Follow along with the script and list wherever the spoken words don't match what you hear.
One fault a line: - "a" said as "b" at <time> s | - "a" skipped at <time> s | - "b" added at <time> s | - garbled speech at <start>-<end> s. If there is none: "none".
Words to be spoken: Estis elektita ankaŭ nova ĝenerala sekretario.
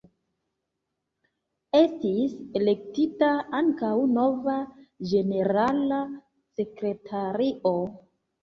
none